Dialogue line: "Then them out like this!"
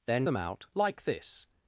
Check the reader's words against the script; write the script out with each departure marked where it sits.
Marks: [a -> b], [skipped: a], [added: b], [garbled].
"Then them out like this!"